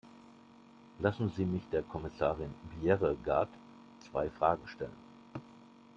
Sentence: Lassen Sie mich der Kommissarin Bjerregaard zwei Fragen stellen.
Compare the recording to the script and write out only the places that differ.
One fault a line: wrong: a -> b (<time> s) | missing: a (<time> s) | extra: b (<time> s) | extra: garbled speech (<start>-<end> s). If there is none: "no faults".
no faults